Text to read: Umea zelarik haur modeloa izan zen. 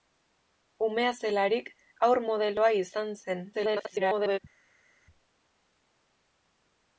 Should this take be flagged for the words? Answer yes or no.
yes